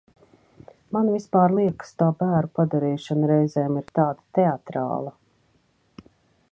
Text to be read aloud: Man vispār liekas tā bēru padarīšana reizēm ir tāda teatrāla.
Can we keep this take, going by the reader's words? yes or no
yes